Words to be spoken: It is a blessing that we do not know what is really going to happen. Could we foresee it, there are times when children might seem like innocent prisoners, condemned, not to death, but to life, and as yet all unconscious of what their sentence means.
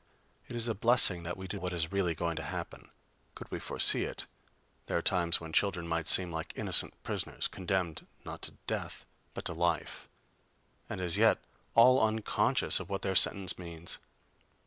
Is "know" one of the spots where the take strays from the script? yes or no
yes